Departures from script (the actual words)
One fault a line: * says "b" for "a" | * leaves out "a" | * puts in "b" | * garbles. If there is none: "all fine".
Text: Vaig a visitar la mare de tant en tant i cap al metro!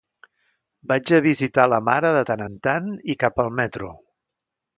all fine